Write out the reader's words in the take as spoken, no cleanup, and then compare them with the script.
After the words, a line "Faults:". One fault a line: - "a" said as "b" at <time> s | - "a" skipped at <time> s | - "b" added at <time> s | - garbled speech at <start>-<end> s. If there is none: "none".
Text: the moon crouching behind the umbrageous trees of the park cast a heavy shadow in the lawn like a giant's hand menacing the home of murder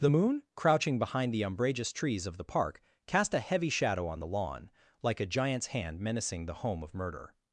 the moon crouching behind the umbrageous trees of the park cast a heavy shadow on the lawn like a giant's hand menacing the home of murder
Faults:
- "in" said as "on" at 4.1 s